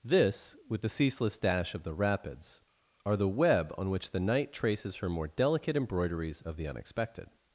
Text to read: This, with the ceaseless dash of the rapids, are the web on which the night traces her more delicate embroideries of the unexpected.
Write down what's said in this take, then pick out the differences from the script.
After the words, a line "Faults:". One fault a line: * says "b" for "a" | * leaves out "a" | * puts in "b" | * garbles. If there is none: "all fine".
This, with the ceaseless dash of the rapids, are the web on which the night traces her more delicate embroideries of the unexpected.
Faults:
all fine